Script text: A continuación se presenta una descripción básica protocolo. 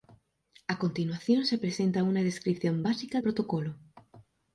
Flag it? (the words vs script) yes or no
no